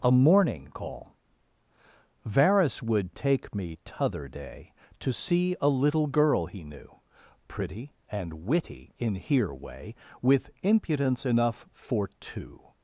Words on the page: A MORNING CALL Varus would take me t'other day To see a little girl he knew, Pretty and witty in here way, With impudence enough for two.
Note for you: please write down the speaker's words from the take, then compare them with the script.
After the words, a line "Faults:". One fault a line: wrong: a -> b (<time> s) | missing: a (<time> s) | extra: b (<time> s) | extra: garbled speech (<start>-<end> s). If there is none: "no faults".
A MORNING CALL Varus would take me t'other day To see a little girl he knew, Pretty and witty in here way, With impudence enough for two.
Faults:
no faults